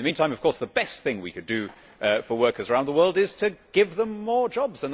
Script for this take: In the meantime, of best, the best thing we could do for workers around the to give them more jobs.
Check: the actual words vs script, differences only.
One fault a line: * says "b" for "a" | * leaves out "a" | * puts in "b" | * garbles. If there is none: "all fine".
* says "course" for "best"
* puts in "world is"